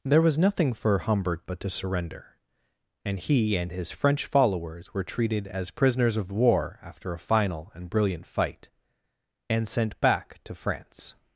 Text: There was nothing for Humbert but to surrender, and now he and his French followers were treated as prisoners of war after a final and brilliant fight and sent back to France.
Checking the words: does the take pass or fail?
fail